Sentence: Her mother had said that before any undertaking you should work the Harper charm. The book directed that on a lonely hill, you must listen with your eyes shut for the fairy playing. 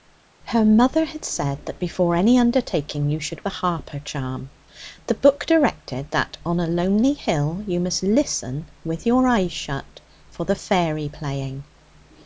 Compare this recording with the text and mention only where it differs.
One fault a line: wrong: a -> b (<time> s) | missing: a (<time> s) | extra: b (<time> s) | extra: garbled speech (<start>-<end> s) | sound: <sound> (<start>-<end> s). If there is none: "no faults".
missing: work (3.5 s)